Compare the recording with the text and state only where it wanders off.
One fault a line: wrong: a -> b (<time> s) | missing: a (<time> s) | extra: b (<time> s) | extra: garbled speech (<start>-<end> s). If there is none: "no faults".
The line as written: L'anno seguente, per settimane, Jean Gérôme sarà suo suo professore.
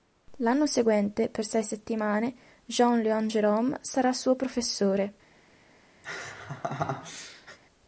extra: sei (1.4 s)
extra: Léon (3.0 s)
missing: suo (4.4 s)